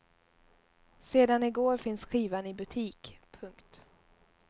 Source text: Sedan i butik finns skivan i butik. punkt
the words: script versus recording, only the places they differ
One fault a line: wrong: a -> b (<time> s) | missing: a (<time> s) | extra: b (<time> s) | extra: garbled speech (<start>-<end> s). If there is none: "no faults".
wrong: butik -> går (1.5 s)